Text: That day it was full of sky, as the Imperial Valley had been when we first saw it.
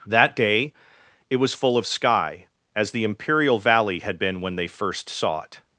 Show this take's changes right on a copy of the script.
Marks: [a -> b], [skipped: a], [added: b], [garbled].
That day it was full of sky, as the Imperial Valley had been when [we -> they] first saw it.